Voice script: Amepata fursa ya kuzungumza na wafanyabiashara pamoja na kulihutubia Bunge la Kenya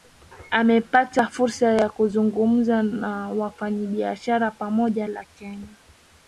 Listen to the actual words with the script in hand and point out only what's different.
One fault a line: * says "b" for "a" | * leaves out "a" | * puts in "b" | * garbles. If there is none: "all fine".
* leaves out "na kulihutubia Bunge"